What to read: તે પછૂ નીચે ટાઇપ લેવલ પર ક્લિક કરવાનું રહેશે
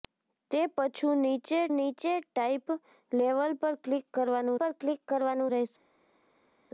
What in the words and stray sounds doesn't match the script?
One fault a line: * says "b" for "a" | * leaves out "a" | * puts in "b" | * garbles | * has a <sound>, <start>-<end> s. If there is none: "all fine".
* puts in "નીચે"
* puts in "પર ક્લિક કરવાનું"